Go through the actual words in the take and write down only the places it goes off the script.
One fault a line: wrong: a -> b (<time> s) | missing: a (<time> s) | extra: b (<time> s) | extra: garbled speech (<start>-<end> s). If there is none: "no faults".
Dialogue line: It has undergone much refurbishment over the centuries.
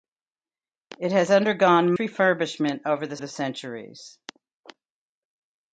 missing: much (1.9 s)
extra: the (3.2 s)